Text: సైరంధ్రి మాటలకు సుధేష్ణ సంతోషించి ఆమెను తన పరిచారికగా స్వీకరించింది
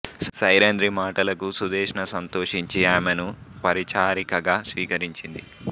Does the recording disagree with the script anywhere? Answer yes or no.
yes